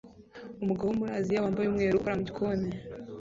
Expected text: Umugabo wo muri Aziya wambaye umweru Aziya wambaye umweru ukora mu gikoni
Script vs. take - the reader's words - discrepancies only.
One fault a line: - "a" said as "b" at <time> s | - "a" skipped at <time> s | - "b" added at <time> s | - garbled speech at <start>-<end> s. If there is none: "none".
- "Aziya wambaye umweru" skipped at 1.9 s